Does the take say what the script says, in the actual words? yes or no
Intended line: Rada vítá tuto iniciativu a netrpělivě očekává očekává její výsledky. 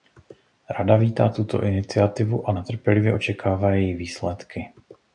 no